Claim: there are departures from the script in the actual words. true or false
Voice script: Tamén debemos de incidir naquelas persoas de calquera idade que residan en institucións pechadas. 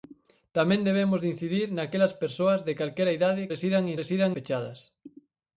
true